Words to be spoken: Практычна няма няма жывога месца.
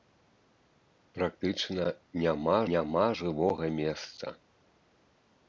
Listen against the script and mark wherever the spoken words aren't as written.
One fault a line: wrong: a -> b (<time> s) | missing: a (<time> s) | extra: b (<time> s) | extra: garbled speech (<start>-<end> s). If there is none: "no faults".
no faults